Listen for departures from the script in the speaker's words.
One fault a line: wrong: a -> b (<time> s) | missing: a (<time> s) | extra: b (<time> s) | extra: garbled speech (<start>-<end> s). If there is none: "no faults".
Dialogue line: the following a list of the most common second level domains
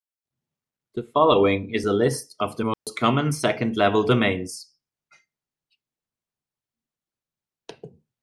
extra: is (1.8 s)